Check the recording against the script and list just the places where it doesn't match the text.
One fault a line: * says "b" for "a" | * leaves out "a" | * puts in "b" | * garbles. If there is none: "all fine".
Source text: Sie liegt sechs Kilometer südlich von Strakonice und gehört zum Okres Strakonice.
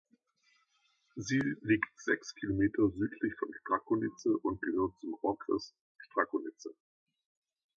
all fine